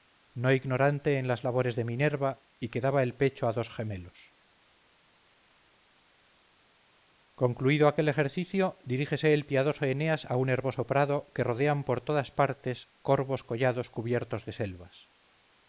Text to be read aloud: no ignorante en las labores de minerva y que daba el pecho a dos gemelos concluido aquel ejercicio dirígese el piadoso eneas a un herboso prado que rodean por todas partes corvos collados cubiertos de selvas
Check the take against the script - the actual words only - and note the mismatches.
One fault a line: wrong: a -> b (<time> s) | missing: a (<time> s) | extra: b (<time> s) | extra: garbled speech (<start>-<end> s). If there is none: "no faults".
no faults